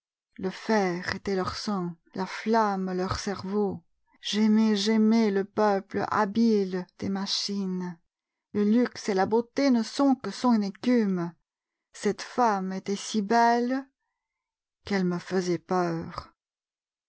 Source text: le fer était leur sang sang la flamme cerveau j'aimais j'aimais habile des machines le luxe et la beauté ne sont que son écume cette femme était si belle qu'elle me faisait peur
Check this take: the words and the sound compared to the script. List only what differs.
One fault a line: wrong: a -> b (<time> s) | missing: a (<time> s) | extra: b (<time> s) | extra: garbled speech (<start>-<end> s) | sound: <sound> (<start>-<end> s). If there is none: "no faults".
missing: sang (1.9 s)
extra: leur (2.9 s)
extra: le peuple (5.3 s)